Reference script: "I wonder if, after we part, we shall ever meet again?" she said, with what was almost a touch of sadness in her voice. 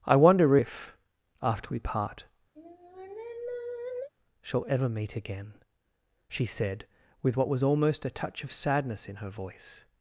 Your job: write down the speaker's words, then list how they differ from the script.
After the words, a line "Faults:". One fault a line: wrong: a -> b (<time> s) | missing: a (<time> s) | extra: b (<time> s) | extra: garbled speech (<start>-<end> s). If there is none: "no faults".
"I wonder if, after we part, shall ever meet again?" she said, with what was almost a touch of sadness in her voice.
Faults:
missing: we (2.2 s)